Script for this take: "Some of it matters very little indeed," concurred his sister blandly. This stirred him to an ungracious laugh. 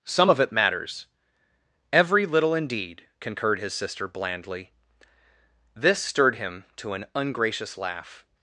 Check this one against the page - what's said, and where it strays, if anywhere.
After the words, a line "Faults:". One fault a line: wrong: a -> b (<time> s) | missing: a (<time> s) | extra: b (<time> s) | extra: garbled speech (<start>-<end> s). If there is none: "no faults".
"Some of it matters every little indeed," concurred his sister blandly. This stirred him to an ungracious laugh.
Faults:
wrong: very -> every (1.9 s)